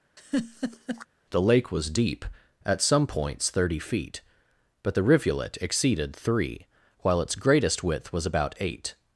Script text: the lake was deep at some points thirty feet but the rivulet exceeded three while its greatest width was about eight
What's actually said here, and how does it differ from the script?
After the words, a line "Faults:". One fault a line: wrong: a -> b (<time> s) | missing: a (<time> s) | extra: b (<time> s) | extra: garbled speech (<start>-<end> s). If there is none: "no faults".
the lake was deep at some points thirty feet but the rivulet exceeded three while its greatest width was about eight
Faults:
no faults